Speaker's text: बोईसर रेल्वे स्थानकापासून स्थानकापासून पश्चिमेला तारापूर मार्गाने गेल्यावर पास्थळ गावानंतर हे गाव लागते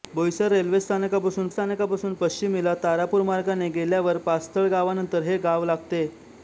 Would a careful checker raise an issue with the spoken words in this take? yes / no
no